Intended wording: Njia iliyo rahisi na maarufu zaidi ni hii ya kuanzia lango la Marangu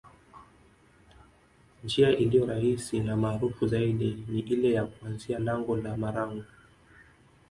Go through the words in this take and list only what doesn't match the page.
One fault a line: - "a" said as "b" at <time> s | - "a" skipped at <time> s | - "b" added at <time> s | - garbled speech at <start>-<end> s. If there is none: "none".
- "hii" said as "ile" at 4.4 s